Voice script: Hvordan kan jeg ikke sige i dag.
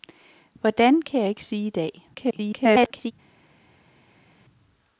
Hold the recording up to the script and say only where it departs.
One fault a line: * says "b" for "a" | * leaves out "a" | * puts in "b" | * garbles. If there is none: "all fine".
* garbles